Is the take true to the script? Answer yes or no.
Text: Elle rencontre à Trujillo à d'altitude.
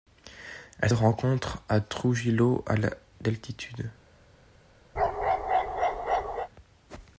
yes